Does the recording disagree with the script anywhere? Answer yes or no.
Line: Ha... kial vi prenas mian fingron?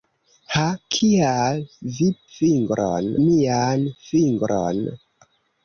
yes